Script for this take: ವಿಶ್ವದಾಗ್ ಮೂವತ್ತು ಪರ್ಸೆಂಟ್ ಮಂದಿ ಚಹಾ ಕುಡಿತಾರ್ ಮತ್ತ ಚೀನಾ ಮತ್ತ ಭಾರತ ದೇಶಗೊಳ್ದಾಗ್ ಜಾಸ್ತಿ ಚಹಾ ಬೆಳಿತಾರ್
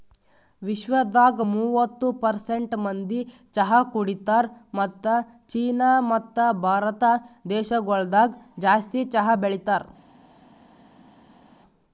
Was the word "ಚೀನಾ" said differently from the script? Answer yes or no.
no